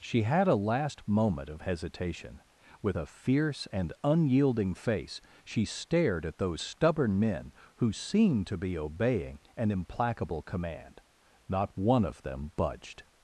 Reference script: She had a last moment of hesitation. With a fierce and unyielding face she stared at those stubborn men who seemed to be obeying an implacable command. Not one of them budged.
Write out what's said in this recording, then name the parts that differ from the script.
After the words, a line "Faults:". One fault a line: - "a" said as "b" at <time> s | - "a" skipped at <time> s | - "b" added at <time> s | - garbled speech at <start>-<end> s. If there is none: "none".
She had a last moment of hesitation. With a fierce and unyielding face she stared at those stubborn men who seemed to be obeying an implacable command. Not one of them budged.
Faults:
none